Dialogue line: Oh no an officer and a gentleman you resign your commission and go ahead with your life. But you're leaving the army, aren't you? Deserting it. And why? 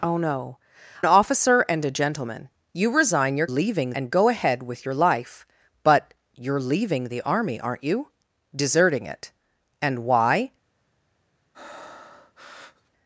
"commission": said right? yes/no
no